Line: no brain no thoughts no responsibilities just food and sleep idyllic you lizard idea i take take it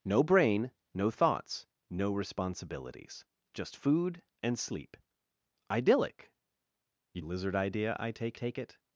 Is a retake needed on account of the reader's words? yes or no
no